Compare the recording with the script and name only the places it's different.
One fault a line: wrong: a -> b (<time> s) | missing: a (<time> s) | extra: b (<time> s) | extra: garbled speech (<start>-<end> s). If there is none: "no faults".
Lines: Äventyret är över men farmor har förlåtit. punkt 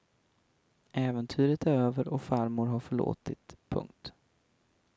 wrong: men -> och (2.1 s)